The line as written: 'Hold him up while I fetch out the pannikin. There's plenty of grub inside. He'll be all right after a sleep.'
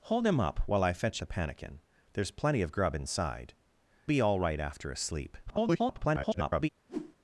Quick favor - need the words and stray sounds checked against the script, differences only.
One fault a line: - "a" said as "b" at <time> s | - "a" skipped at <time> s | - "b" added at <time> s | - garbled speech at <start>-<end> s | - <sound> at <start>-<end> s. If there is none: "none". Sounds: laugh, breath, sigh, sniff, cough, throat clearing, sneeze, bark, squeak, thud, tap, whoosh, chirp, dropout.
- "out" skipped at 1.2 s
- "He'll" skipped at 3.5 s
- garbled speech at 5.5-6.7 s
- whoosh at 6.9-7.2 s